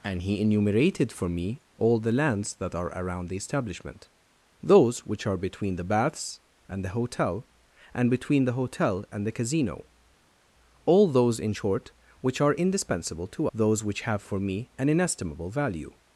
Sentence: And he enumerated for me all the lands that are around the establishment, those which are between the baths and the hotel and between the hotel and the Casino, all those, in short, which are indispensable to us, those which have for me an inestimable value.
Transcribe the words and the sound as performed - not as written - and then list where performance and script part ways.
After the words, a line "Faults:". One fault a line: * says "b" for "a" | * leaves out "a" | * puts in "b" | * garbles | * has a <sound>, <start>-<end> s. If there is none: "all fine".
And he enumerated for me all the lands that are around the establishment, those which are between the baths and the hotel and between the hotel and the Casino, all those, in short, which are indispensable to those which have for me an inestimable value.
Faults:
* leaves out "us"